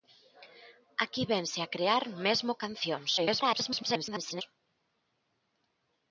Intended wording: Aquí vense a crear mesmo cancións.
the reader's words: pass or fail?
fail